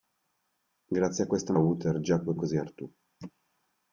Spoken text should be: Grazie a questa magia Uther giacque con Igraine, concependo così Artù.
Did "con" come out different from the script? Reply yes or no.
yes